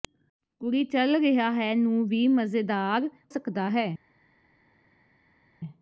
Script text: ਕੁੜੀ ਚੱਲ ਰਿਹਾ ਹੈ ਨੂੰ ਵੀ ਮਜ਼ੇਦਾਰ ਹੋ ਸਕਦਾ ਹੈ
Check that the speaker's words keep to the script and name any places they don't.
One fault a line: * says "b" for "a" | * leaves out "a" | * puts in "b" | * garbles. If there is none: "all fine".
* leaves out "ਹੋ"